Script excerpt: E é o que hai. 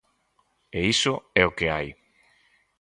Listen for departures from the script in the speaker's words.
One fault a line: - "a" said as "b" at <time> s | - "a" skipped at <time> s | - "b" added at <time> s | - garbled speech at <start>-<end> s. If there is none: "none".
- "iso" added at 0.9 s